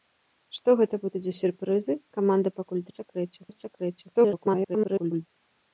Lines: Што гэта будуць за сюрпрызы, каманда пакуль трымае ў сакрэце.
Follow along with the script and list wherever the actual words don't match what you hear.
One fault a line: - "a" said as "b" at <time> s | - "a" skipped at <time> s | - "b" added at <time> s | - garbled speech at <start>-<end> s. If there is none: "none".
- "трымае" said as "сакрэце" at 3.0 s
- garbled speech at 4.1-5.3 s